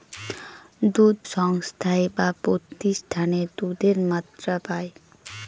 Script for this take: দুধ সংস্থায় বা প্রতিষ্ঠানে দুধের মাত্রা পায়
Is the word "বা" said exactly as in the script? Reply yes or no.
yes